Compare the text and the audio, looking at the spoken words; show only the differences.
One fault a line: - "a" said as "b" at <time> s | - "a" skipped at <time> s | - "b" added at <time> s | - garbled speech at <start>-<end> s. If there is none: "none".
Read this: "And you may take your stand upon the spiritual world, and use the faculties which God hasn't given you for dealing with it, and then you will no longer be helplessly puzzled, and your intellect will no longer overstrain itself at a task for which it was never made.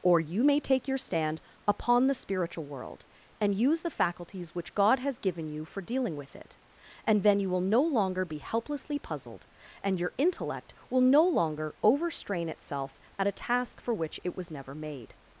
- "And" said as "Or" at 0.0 s
- "hasn't" said as "has" at 5.0 s